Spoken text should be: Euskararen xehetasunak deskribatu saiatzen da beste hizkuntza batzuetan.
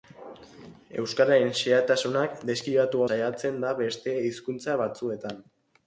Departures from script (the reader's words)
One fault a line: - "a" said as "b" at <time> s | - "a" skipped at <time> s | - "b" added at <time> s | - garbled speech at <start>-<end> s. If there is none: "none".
none